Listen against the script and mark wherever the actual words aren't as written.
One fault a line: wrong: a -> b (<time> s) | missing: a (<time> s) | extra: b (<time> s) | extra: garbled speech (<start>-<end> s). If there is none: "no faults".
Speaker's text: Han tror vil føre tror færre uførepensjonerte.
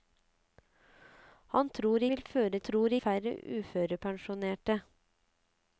no faults